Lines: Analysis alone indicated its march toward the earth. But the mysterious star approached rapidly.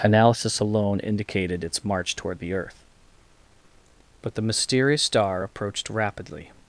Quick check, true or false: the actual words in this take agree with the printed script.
true